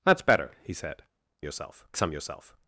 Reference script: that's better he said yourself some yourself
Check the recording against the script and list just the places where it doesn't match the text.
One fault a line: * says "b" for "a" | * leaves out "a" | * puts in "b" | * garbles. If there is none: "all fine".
all fine